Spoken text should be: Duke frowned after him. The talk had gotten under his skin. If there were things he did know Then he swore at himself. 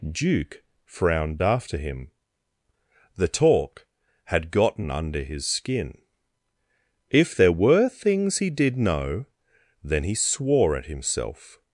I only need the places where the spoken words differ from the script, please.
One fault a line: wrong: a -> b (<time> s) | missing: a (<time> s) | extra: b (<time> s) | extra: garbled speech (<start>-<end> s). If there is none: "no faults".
no faults